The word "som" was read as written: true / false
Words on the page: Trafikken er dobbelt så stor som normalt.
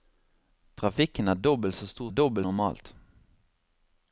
false